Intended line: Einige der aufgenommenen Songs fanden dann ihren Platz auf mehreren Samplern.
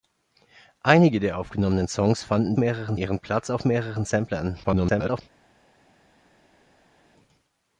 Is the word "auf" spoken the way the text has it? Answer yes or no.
yes